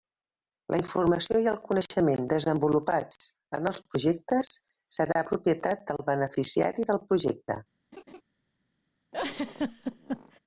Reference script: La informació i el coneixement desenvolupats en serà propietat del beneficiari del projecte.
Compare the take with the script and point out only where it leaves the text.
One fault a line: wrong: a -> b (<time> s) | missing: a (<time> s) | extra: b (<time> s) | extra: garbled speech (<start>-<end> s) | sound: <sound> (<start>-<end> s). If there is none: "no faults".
extra: els projectes (3.7 s)
sound: laugh (7.9-8.2 s)
sound: laugh (9.1-10.4 s)